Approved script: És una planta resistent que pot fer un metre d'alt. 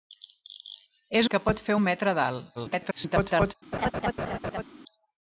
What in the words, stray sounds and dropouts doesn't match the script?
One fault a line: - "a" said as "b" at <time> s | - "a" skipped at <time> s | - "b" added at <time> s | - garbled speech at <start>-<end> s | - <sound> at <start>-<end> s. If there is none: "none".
- "una planta resistent" skipped at 1.3 s
- garbled speech at 2.5-3.5 s
- laugh at 3.7-4.6 s